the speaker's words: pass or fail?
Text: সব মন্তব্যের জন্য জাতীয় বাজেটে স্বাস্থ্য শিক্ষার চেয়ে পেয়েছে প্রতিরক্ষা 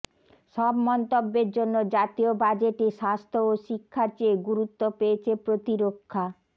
fail